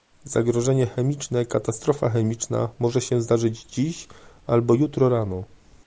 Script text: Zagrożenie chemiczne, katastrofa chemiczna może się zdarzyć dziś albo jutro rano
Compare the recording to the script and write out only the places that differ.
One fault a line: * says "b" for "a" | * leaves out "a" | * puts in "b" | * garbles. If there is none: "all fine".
all fine